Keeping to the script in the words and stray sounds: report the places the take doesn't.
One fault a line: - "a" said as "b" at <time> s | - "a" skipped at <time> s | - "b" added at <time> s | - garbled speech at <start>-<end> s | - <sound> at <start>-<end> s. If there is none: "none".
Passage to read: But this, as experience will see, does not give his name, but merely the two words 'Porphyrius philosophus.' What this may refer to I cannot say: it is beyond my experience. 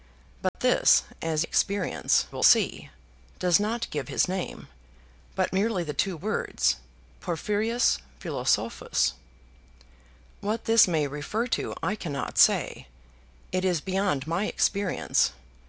- dropout at 0.5-0.5 s